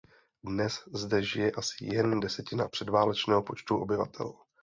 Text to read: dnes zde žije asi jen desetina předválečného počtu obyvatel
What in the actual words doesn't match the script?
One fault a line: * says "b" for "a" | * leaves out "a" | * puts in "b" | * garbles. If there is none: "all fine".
all fine